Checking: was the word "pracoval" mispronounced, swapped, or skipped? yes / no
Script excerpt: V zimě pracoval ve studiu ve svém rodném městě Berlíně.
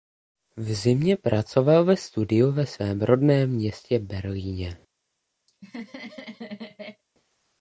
no